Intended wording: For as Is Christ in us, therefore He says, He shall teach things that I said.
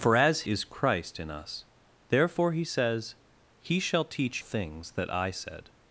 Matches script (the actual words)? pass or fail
pass